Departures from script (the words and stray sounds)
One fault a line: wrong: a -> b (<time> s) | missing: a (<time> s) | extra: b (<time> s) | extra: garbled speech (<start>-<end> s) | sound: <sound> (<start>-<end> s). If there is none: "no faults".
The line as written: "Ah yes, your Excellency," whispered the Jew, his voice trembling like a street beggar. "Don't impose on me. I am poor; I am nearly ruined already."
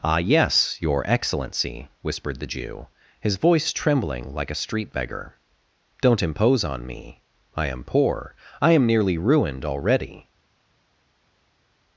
no faults